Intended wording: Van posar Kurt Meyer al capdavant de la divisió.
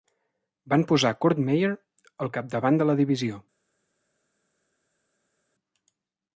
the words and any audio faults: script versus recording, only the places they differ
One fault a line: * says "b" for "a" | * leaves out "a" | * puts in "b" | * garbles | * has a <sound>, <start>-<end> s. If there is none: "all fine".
all fine